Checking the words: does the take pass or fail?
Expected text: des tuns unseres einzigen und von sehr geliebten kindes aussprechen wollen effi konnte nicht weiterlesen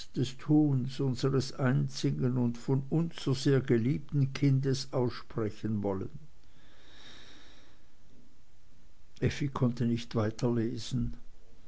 fail